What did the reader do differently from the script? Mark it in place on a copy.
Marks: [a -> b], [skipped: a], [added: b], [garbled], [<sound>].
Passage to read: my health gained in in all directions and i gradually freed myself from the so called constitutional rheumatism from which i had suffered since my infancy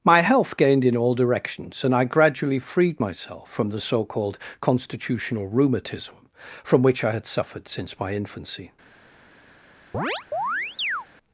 my health gained in [skipped: in] all directions and i gradually freed myself from the so called constitutional rheumatism from which i had suffered since my infancy [chirp]